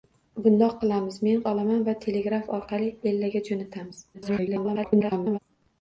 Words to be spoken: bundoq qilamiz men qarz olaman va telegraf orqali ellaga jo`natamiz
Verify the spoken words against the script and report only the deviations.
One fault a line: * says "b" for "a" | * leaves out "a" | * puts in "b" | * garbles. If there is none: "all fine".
* leaves out "qarz"
* garbles